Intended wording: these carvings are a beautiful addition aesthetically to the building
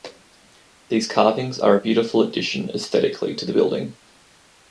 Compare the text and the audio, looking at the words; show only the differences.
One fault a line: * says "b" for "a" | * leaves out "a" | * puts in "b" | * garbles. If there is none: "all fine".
all fine